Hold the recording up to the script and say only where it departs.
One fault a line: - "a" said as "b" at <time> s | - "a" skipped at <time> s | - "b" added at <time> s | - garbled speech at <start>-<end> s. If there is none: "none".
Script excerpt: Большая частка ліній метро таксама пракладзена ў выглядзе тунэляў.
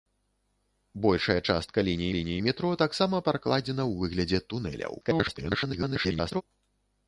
- "ліній" added at 2.2 s
- garbled speech at 5.0-6.4 s